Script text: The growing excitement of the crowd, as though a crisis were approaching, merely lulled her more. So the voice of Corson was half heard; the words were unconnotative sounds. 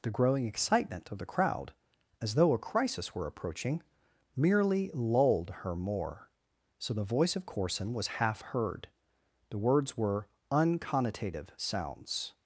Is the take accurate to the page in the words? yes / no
yes